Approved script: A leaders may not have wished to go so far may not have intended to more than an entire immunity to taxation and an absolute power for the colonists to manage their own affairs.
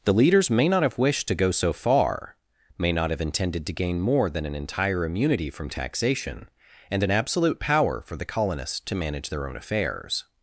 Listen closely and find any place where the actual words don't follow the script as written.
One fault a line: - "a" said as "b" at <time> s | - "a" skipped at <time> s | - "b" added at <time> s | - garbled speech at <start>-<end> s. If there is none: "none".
- "A" said as "The" at 0.0 s
- "gain" added at 3.7 s
- "to" said as "from" at 5.5 s